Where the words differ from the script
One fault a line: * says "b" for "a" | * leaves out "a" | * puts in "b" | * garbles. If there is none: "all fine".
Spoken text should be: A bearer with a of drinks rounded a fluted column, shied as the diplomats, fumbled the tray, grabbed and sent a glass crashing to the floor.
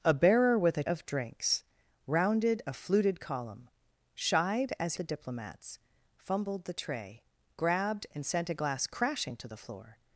all fine